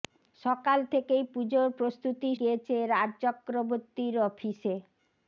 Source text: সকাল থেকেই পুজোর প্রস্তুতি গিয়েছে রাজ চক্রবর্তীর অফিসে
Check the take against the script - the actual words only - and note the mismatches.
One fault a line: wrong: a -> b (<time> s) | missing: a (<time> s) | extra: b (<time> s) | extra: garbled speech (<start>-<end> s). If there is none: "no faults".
no faults